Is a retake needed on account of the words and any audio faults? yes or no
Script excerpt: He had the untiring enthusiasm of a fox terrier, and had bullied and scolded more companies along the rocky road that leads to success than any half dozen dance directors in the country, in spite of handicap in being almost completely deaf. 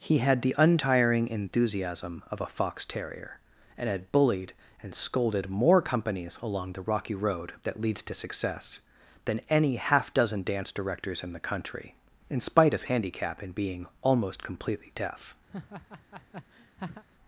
yes